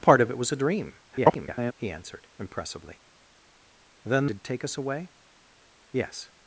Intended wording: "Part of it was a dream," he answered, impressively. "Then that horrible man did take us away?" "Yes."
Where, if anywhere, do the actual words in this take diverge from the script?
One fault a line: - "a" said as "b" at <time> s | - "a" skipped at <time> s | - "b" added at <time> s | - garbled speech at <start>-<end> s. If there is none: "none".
- garbled speech at 1.1-1.7 s
- "that horrible man" skipped at 4.3 s